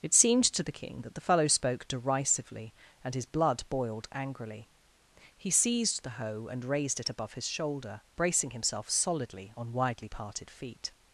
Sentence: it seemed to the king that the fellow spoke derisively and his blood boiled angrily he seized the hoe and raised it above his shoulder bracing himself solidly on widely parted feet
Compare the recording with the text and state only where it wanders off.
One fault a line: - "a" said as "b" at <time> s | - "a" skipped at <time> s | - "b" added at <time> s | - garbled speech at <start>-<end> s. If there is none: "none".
none